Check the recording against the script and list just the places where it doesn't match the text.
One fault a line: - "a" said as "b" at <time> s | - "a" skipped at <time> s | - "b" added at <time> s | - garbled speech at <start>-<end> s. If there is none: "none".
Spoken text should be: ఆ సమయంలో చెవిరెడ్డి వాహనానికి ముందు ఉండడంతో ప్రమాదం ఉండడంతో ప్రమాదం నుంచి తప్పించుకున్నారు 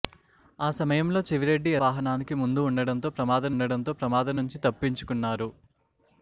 none